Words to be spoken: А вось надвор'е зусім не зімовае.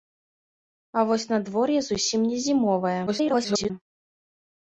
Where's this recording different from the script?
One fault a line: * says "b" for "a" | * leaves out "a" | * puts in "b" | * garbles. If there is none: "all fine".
* garbles